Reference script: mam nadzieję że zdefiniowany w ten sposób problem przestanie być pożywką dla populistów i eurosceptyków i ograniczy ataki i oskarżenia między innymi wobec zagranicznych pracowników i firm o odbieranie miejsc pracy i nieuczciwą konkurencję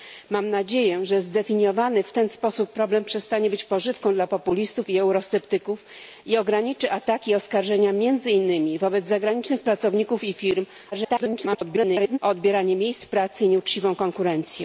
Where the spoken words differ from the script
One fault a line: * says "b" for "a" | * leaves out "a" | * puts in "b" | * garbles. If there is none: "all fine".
* garbles